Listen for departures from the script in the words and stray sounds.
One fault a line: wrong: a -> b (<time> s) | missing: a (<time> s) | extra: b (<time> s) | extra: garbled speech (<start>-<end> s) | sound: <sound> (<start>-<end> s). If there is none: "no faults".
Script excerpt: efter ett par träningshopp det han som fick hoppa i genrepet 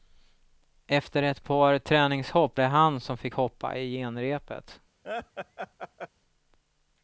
sound: laugh (5.0-6.1 s)